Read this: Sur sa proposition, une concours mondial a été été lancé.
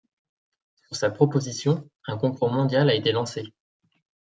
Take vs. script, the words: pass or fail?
fail